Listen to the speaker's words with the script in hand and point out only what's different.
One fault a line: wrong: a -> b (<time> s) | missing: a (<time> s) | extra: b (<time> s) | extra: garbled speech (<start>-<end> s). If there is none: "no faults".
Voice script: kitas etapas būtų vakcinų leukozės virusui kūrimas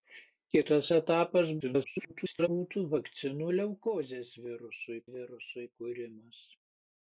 extra: garbled speech (1.6-2.5 s)
extra: virusui (5.2 s)